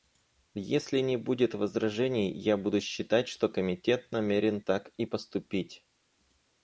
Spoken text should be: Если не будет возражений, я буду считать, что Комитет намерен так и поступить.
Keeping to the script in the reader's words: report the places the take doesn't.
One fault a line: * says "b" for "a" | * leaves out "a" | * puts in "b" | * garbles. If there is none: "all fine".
all fine